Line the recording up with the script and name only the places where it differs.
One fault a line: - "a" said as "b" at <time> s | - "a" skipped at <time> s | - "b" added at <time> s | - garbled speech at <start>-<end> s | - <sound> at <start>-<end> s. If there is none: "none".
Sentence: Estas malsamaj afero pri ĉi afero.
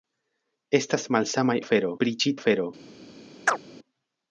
- chirp at 3.5-3.6 s